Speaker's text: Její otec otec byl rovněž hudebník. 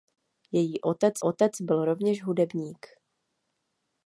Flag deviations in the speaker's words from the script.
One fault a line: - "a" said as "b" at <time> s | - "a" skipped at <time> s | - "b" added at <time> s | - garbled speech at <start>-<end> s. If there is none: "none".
none